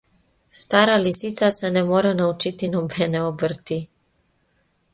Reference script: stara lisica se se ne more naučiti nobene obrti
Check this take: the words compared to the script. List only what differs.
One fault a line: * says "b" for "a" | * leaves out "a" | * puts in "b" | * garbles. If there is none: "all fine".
* leaves out "se"